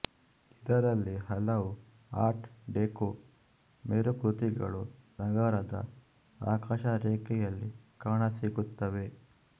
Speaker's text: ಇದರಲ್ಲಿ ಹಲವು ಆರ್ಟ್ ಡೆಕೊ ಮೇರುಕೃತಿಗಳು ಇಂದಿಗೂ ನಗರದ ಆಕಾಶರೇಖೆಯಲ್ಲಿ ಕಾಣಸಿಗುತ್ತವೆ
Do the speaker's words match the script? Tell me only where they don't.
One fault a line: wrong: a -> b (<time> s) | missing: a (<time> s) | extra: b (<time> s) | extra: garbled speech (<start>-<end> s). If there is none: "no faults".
missing: ಇಂದಿಗೂ (4.8 s)